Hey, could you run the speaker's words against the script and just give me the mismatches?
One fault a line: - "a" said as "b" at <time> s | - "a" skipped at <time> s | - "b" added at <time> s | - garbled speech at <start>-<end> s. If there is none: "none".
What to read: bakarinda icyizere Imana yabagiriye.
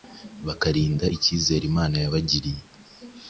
none